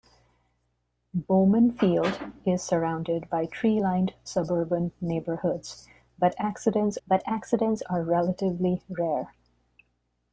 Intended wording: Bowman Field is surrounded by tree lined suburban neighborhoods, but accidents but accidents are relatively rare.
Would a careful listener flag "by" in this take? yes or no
no